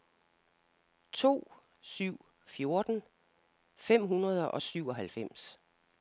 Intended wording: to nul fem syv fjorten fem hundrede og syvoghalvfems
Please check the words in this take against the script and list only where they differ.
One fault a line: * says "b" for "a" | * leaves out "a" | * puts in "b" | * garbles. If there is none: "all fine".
* leaves out "nul fem"